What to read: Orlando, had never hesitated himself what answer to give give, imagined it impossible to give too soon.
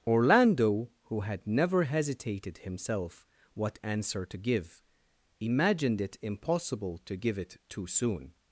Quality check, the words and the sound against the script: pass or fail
fail